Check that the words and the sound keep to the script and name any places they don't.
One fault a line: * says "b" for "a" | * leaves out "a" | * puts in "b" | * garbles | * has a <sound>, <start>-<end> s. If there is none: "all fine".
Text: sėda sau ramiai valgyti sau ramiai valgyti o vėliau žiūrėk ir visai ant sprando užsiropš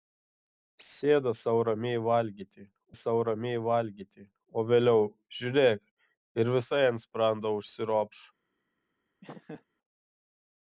* has a laugh, 9.2-9.6 s